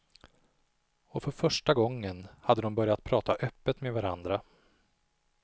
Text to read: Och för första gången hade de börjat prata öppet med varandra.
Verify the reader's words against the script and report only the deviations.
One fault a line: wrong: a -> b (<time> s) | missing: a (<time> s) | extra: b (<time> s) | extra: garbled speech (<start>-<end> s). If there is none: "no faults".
no faults